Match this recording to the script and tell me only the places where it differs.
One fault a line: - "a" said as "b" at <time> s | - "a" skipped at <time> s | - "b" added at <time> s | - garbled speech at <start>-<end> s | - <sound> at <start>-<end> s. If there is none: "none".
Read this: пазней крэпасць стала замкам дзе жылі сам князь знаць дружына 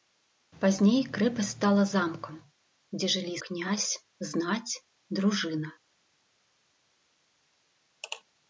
- "сам" skipped at 3.4 s